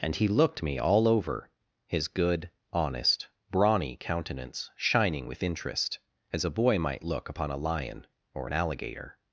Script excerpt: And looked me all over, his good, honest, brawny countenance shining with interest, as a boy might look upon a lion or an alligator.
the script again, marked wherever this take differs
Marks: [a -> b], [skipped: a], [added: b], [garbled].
And [added: he] looked me all over, his good, honest, brawny countenance shining with interest, as a boy might look upon a lion or an alligator.